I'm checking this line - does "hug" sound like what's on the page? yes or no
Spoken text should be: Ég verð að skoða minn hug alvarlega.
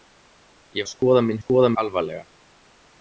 no